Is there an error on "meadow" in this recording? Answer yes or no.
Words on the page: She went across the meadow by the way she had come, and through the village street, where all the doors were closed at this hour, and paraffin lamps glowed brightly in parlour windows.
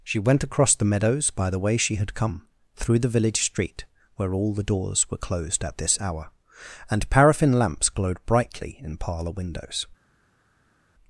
yes